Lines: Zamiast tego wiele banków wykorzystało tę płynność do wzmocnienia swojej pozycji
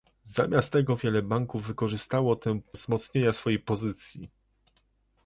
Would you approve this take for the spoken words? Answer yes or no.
no